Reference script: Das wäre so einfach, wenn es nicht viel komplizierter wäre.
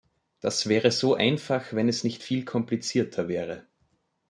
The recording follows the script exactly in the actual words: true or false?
true